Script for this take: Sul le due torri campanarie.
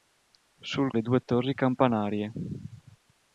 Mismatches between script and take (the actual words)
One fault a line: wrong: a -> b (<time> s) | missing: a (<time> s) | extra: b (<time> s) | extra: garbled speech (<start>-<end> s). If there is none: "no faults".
no faults